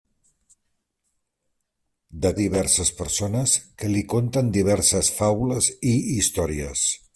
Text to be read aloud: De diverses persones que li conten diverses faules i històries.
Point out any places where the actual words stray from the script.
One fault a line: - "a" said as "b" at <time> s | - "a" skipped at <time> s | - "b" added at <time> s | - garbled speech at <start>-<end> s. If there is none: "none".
none